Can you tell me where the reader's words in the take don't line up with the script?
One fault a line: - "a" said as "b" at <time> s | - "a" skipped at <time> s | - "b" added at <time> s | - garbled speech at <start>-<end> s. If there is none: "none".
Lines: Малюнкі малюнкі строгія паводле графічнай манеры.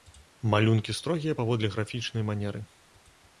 - "малюнкі" skipped at 0.9 s